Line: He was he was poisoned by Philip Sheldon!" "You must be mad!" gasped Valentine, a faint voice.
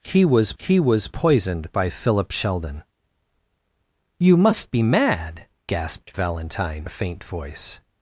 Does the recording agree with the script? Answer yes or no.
yes